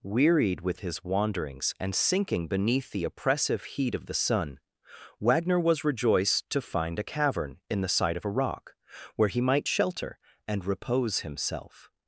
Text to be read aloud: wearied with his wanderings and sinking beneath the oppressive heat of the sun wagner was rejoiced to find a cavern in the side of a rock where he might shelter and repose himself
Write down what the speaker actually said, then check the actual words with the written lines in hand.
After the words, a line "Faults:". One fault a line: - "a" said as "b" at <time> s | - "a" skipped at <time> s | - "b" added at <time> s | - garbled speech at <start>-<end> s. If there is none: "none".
wearied with his wanderings and sinking beneath the oppressive heat of the sun wagner was rejoiced to find a cavern in the side of a rock where he might shelter and repose himself
Faults:
none